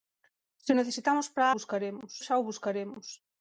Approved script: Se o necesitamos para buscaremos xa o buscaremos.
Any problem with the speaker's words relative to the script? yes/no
no